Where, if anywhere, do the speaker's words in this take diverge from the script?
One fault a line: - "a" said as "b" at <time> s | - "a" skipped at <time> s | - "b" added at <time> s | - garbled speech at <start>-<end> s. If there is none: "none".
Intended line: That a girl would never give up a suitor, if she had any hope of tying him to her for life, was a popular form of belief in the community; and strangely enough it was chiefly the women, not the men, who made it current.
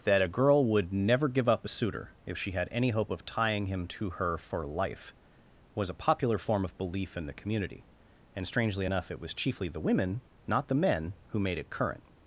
none